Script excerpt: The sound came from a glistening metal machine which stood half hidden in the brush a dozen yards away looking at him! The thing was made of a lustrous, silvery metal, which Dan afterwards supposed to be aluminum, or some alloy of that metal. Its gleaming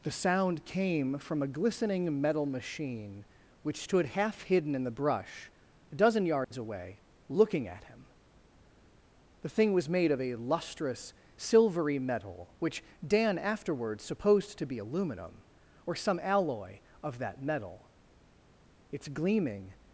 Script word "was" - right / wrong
right